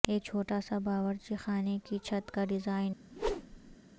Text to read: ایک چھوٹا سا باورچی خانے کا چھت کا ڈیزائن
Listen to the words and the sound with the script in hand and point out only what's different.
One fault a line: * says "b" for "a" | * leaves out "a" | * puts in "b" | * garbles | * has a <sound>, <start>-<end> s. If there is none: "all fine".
* says "کی" for "کا"
* has a whoosh, 3.1-3.8 s